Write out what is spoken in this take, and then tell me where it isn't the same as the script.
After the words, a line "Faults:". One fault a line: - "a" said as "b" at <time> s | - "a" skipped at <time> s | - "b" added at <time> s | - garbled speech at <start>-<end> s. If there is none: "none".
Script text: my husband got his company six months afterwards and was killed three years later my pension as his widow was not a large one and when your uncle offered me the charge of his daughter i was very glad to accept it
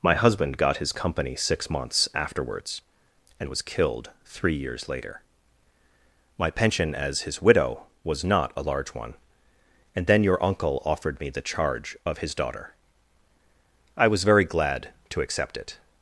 my husband got his company six months afterwards and was killed three years later my pension as his widow was not a large one and then your uncle offered me the charge of his daughter i was very glad to accept it
Faults:
- "when" said as "then" at 10.1 s